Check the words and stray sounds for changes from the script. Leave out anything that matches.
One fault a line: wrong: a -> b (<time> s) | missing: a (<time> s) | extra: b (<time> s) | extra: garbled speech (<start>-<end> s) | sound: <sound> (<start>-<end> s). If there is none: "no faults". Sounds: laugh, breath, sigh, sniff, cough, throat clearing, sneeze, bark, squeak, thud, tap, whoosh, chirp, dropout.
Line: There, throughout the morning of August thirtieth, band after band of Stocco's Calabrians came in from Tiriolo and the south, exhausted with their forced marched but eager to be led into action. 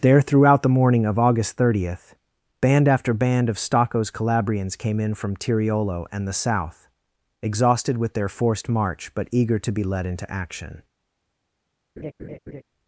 wrong: marched -> march (8.7 s)
sound: laugh (12.0-12.6 s)